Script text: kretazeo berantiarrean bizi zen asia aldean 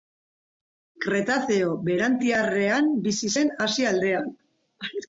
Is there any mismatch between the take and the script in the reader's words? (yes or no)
no